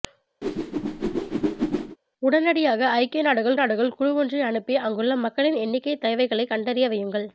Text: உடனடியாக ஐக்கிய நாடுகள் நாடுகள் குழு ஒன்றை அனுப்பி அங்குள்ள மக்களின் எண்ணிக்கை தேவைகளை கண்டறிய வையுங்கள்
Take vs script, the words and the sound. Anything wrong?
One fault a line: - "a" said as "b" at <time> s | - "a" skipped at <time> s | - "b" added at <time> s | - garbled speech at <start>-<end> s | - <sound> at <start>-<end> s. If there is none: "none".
- whoosh at 0.4-2.0 s